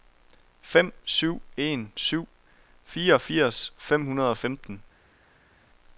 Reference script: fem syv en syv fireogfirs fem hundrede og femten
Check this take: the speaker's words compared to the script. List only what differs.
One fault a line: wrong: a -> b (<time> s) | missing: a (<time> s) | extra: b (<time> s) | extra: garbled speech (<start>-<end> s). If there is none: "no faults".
no faults